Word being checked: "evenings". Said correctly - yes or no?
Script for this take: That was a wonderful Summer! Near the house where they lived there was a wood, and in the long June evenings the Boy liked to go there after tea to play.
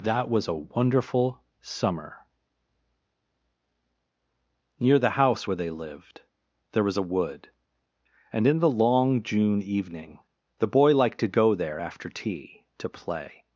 no